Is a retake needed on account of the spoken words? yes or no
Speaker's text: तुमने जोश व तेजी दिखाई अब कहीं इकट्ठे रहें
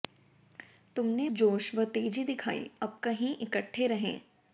no